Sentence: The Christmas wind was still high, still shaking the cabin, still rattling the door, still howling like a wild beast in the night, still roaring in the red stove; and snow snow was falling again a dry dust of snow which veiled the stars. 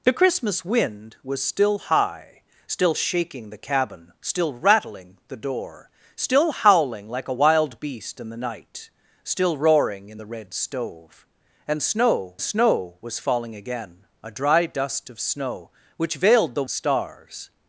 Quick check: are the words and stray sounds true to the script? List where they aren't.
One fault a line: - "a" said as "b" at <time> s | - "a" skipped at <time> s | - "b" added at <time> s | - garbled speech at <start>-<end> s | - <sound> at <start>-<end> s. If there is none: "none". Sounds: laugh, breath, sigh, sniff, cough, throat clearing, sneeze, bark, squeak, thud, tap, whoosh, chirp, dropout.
none